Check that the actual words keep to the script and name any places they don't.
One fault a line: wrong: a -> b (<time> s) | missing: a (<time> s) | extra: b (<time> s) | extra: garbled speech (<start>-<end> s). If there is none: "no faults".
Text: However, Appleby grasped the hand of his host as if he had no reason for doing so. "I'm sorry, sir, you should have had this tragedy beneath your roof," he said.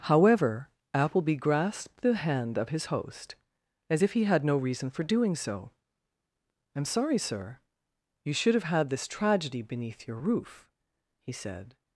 no faults